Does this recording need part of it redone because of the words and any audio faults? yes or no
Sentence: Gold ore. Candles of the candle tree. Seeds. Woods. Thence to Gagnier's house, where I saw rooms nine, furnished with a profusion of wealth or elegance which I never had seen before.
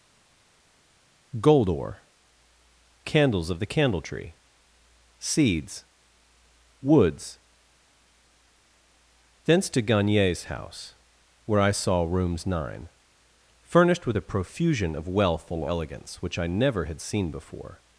yes